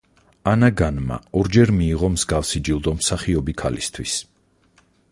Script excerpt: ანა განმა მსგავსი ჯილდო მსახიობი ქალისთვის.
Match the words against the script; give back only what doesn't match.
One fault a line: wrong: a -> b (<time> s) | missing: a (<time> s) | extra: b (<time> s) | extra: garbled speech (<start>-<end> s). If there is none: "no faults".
extra: ორჯერ მიიღო (1.4 s)